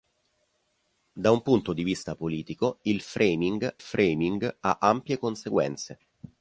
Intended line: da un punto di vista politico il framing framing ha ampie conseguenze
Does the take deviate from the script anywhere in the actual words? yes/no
no